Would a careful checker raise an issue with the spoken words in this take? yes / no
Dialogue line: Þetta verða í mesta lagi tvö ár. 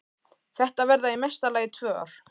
no